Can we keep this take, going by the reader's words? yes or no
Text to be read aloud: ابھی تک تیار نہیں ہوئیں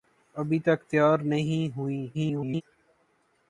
no